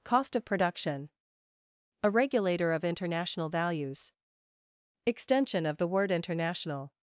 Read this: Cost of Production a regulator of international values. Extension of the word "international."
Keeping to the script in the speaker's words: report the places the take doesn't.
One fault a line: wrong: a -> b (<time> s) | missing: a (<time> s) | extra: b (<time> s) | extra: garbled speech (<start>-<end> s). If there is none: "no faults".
no faults